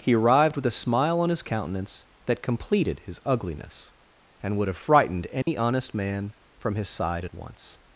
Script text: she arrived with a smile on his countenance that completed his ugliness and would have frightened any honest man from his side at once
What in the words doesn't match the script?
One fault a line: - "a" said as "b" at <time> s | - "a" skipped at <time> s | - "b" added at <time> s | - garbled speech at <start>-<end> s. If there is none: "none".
- "she" said as "he" at 0.0 s